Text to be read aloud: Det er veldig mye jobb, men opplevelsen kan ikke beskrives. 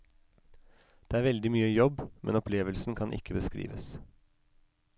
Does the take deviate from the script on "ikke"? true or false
false